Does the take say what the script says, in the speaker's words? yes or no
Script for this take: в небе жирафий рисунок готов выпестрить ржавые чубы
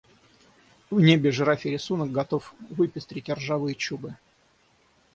yes